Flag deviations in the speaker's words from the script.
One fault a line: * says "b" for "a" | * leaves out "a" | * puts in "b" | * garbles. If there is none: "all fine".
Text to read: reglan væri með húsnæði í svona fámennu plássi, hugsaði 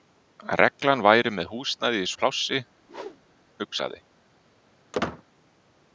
* leaves out "svona fámennu"